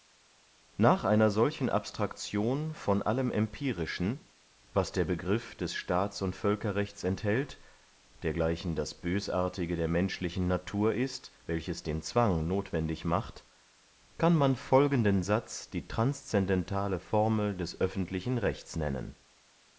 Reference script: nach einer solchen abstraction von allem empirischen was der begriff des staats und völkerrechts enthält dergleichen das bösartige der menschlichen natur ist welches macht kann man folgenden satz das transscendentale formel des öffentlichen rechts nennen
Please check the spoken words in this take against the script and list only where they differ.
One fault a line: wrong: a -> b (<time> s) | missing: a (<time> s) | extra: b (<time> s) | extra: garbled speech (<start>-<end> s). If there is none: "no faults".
extra: den zwang nothwendig (11.8 s)
wrong: das -> die (15.7 s)